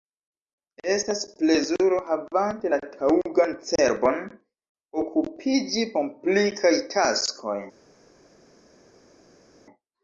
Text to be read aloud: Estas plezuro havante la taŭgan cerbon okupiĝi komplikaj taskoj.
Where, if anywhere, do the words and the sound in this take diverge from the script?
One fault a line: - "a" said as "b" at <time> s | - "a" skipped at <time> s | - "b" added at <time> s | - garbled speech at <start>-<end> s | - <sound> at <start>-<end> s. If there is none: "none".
none